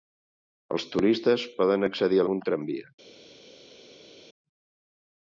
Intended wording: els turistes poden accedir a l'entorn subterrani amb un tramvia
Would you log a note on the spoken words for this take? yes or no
yes